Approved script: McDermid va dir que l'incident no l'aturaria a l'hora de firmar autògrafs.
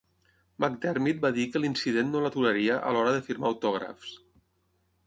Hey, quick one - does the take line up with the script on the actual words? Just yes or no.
yes